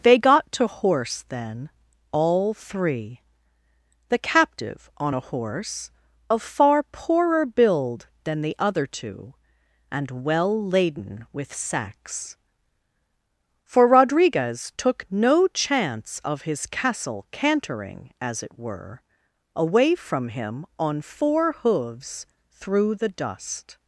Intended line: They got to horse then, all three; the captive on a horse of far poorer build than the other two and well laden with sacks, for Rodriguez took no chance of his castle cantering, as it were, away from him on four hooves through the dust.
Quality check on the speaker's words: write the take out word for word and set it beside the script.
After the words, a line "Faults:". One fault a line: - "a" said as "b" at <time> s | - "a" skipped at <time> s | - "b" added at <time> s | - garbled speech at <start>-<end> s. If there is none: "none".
They got to horse then, all three; the captive on a horse of far poorer build than the other two and well laden with sacks, for Rodriguez took no chance of his castle cantering, as it were, away from him on four hooves through the dust.
Faults:
none